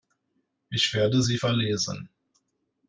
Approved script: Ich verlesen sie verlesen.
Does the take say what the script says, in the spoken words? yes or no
no